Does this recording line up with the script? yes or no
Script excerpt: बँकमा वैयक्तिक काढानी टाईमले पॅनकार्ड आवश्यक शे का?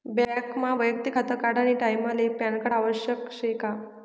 no